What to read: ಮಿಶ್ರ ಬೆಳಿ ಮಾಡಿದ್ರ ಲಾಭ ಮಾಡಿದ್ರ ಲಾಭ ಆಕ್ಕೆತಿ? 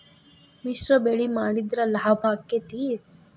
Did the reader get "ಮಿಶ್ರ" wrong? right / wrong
right